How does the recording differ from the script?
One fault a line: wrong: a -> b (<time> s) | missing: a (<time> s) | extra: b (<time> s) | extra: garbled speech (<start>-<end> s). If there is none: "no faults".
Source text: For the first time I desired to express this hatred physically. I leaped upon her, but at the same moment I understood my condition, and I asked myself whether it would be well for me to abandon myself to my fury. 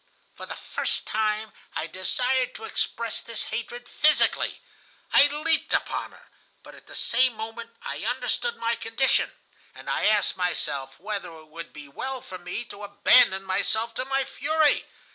no faults